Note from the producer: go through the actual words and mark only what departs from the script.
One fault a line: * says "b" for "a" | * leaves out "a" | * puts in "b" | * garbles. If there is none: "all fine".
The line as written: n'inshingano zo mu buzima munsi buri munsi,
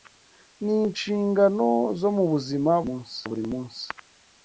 all fine